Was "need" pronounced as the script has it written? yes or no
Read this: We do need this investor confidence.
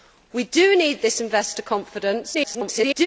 yes